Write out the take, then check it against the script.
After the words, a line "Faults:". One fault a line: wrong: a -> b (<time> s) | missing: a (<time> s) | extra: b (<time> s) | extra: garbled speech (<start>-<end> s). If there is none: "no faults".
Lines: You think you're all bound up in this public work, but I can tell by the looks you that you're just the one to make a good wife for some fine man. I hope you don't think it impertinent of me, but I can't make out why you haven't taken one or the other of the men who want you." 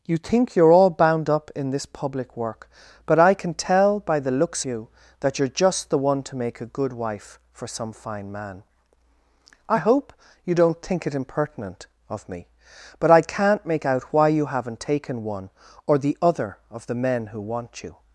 You think you're all bound up in this public work, but I can tell by the looks you that you're just the one to make a good wife for some fine man. I hope you don't think it impertinent of me, but I can't make out why you haven't taken one or the other of the men who want you."
Faults:
no faults